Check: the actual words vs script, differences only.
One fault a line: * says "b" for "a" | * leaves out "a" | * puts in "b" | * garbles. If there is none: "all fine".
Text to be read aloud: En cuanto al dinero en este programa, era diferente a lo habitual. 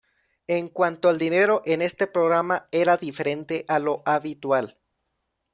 all fine